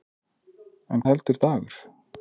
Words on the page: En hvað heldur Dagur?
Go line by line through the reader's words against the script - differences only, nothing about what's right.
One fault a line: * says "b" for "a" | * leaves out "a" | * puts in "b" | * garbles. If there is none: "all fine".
* leaves out "hvað"